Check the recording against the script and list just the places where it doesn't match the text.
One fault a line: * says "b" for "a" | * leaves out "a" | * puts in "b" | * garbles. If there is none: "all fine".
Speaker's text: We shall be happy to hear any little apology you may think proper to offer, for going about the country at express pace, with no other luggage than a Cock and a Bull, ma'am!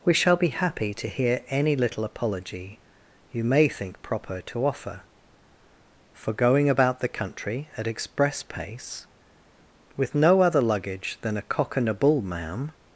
all fine